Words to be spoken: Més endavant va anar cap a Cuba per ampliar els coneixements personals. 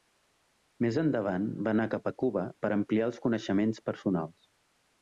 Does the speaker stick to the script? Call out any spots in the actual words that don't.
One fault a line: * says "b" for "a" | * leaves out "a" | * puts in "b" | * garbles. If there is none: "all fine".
all fine